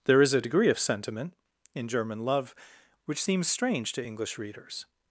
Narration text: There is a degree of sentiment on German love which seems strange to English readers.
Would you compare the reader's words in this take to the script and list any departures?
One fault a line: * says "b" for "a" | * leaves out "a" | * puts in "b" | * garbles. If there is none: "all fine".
* says "in" for "on"